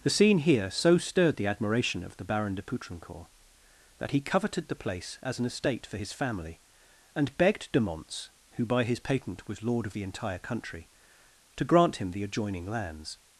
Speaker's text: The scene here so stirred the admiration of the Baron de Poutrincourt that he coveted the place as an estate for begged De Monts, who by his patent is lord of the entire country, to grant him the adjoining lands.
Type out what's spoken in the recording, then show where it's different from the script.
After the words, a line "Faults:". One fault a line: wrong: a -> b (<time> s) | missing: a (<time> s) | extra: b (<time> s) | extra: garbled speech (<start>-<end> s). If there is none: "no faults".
The scene here so stirred the admiration of the Baron de Poutrincourt that he coveted the place as an estate for his family, and begged De Monts, who by his patent was lord of the entire country, to grant him the adjoining lands.
Faults:
extra: his family and (6.0 s)
wrong: is -> was (9.5 s)